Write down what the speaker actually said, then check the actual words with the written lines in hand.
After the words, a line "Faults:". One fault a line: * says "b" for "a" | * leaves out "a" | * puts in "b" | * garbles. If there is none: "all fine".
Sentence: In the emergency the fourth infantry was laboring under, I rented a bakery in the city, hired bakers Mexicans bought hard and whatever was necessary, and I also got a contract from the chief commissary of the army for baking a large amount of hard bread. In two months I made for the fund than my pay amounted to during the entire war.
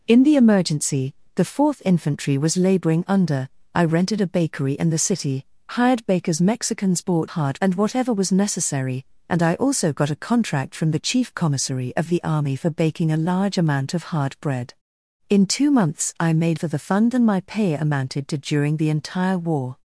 In the emergency the fourth infantry was laboring under, I rented a bakery in the city, hired bakers Mexicans bought hard and whatever was necessary, and I also got a contract from the chief commissary of the army for baking a large amount of hard bread. In two months I made for the fund than my pay amounted to during the entire war.
Faults:
all fine